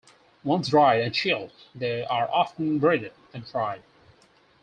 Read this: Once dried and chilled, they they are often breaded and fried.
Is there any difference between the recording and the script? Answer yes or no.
yes